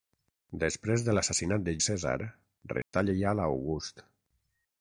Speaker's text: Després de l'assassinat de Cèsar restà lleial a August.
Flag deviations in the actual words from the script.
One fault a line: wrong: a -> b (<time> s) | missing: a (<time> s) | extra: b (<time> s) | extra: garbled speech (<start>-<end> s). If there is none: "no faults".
no faults